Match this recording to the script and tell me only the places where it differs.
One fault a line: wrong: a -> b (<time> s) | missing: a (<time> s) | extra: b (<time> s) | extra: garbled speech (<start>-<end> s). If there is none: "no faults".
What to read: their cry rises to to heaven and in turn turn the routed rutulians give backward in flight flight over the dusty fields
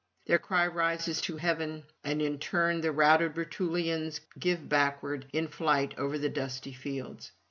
missing: to (1.4 s)
missing: turn (2.8 s)
missing: flight (5.9 s)